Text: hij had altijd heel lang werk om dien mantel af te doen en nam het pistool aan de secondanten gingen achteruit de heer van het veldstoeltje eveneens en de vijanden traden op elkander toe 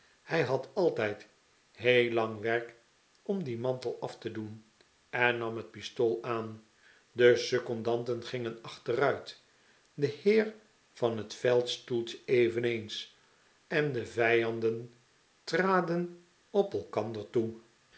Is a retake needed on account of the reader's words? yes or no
no